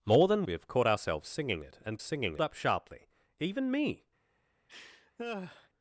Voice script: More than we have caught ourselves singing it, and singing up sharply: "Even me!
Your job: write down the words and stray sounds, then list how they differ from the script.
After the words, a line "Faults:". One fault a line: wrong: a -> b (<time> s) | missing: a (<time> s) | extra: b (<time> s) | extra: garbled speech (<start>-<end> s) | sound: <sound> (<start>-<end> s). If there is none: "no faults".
More than we have caught ourselves singing it, and singing up sharply: "Even me!
Faults:
sound: laugh (4.7-5.7 s)